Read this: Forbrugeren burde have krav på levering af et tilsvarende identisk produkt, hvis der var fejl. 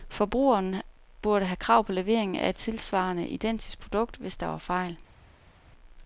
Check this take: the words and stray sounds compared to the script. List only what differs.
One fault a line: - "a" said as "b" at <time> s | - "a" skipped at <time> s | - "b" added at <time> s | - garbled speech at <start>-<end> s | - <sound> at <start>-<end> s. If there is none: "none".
none